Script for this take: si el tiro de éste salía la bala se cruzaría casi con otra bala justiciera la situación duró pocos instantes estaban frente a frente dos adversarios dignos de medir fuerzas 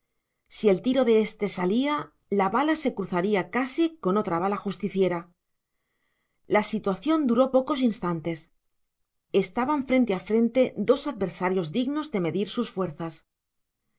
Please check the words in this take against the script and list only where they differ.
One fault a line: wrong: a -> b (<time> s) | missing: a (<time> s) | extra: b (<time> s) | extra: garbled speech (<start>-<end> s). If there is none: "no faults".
extra: sus (12.6 s)